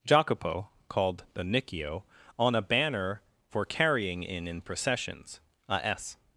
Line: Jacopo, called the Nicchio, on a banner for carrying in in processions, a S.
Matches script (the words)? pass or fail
pass